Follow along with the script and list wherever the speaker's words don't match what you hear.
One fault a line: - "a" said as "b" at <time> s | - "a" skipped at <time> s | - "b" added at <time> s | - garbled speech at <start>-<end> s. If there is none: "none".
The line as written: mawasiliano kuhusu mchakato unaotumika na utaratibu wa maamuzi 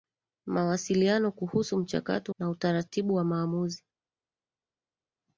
- "unaotumika" skipped at 2.4 s